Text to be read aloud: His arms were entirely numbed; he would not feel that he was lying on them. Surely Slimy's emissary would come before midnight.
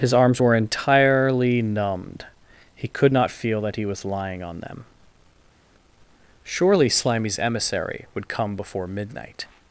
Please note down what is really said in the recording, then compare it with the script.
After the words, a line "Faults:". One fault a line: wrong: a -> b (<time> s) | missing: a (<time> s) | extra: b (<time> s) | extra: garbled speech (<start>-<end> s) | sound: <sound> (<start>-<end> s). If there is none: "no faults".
His arms were entirely numbed; he could not feel that he was lying on them. Surely Slimy's emissary would come before midnight.
Faults:
wrong: would -> could (2.9 s)